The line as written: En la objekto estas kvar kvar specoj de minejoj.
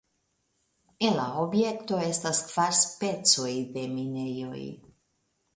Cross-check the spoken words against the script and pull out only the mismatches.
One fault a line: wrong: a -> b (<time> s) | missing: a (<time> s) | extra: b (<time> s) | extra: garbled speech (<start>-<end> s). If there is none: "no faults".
missing: kvar (2.8 s)